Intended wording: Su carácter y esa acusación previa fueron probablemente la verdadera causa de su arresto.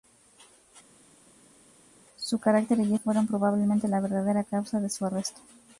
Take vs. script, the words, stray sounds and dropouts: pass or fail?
fail